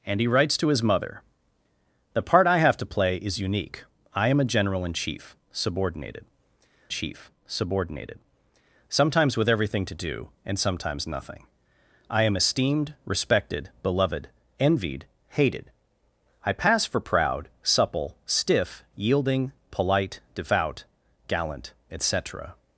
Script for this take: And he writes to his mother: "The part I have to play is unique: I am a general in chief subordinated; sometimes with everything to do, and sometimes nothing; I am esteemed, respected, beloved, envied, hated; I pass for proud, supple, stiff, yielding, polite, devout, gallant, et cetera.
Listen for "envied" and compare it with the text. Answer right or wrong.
right